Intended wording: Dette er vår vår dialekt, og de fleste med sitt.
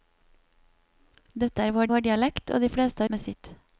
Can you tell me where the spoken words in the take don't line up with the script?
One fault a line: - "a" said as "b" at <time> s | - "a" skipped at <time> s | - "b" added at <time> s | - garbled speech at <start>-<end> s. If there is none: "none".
none